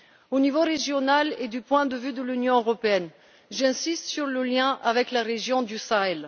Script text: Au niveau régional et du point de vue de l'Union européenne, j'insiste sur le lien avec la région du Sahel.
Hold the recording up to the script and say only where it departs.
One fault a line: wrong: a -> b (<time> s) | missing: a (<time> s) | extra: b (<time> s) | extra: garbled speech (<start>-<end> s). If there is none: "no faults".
no faults